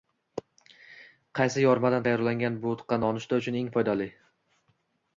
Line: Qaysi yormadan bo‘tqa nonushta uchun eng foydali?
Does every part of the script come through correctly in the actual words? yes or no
no